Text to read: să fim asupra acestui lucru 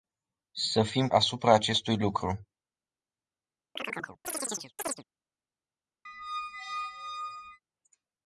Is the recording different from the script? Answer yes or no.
no